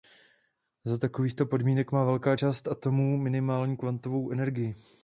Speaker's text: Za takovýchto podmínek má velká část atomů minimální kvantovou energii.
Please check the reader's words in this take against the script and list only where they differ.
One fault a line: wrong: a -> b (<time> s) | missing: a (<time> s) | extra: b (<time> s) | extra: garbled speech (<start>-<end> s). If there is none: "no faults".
no faults